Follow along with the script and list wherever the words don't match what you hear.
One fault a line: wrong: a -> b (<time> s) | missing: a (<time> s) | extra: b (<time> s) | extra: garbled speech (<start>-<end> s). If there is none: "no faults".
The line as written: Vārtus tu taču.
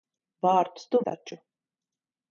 no faults